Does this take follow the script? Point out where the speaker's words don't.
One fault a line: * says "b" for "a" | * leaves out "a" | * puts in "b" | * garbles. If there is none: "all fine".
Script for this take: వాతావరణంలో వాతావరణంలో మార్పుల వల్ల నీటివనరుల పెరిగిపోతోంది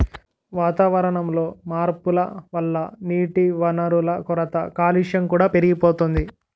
* leaves out "వాతావరణంలో"
* puts in "కొరత కాలుష్యం కూడా"